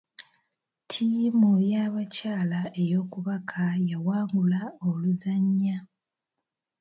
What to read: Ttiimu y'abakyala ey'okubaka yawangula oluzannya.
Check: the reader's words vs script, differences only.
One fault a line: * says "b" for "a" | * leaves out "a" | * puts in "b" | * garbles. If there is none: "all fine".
all fine